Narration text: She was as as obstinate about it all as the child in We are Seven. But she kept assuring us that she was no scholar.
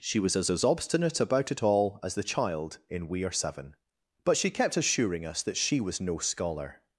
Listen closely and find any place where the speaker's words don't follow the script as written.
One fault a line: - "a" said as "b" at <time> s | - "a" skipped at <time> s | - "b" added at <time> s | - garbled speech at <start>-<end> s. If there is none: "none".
none